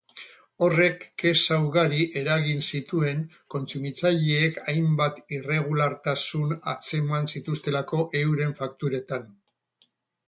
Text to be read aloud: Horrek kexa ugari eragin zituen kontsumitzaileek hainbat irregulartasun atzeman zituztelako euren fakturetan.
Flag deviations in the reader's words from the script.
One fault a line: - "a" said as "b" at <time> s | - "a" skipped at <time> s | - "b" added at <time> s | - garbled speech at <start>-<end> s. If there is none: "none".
none